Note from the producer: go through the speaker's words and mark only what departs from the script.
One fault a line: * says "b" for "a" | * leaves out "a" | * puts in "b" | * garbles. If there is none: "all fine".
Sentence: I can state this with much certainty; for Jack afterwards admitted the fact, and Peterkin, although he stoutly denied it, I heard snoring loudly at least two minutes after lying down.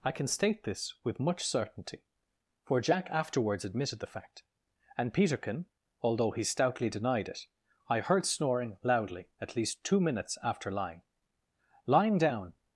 * puts in "lying"